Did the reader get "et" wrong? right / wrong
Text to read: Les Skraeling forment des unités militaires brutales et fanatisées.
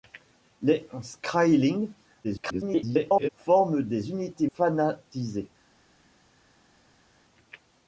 wrong